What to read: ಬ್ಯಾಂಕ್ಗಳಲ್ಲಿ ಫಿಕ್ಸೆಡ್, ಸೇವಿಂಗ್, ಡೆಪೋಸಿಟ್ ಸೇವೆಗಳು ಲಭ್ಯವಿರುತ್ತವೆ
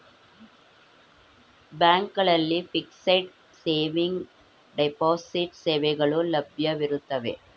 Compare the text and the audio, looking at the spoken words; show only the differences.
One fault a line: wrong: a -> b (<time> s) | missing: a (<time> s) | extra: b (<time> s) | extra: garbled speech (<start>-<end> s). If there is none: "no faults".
no faults